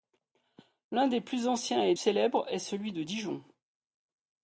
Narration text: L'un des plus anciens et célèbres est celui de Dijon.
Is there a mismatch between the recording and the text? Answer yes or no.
no